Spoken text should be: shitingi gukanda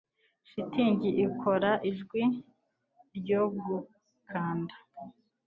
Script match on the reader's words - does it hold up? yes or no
no